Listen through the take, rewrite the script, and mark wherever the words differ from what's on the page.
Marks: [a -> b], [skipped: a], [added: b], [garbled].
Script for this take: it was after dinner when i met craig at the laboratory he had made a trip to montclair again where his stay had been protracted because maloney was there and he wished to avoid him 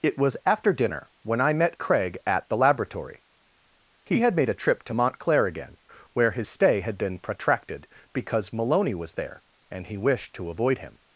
it was after dinner when i met craig at the laboratory he had made a trip to montclair again where his stay had been protracted because maloney was there and he wished to avoid him